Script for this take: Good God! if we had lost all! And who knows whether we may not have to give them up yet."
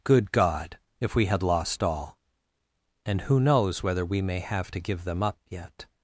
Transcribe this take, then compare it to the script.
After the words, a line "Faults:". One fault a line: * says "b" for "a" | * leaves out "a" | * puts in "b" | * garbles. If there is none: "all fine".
Good God! if we had lost all! And who knows whether we may have to give them up yet."
Faults:
* leaves out "not"